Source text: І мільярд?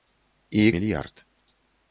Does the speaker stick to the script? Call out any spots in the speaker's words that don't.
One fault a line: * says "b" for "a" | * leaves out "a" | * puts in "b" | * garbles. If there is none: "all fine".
all fine